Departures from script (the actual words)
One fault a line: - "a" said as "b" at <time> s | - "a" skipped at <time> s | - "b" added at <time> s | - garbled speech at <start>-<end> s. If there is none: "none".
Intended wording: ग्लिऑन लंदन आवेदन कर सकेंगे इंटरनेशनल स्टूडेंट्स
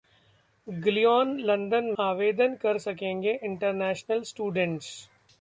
none